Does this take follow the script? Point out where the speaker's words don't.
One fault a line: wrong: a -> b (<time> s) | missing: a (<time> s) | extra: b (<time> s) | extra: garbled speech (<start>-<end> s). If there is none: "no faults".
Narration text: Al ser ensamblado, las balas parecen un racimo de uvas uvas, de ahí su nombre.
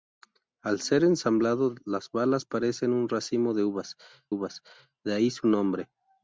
no faults